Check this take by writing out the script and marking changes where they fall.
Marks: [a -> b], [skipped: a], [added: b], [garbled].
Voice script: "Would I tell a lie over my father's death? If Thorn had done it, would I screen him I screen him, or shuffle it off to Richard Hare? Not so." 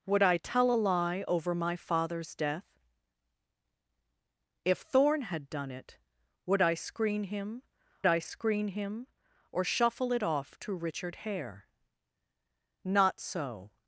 "Would I tell a lie over my father's death? If Thorn had done it, would I screen him I screen him, or shuffle it off to Richard Hare? Not so."